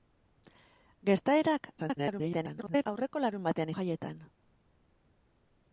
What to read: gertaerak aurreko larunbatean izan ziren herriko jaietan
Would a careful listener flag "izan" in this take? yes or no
yes